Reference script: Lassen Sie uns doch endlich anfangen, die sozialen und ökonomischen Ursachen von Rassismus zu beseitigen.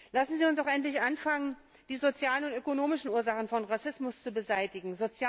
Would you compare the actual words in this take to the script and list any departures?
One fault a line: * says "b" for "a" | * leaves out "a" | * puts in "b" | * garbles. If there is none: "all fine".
all fine